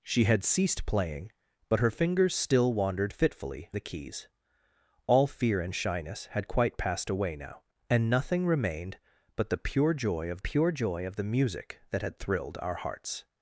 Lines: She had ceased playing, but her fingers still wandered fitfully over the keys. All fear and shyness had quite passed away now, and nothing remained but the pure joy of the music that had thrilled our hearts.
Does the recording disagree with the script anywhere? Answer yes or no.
yes